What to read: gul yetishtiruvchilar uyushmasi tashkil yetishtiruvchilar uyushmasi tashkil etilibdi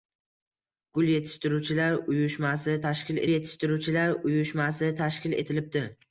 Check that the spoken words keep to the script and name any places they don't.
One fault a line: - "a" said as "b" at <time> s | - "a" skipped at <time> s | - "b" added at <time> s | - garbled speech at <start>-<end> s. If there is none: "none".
none